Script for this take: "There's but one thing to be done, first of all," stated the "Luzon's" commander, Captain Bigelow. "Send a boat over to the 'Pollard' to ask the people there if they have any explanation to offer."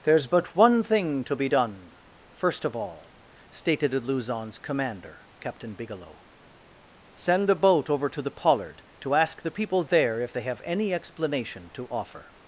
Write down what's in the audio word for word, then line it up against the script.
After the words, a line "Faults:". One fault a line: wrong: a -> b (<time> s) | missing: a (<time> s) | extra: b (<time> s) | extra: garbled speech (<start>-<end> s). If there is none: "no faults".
"There's but one thing to be done, first of all," stated the "Luzon's" commander, Captain Bigelow. "Send a boat over to the 'Pollard' to ask the people there if they have any explanation to offer."
Faults:
no faults